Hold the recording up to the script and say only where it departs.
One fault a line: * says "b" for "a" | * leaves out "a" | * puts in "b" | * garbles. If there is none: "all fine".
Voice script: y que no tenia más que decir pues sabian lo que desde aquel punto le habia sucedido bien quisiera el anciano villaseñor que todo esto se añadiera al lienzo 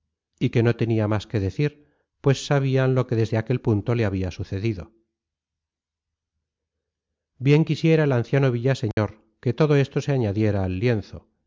all fine